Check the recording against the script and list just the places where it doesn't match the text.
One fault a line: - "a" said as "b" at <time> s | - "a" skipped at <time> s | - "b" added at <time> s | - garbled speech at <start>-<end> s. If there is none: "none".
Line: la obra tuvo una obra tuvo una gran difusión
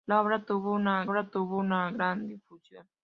none